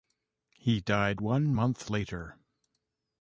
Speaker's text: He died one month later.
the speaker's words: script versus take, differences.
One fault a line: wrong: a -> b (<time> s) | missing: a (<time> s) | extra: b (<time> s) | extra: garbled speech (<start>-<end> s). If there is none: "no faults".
no faults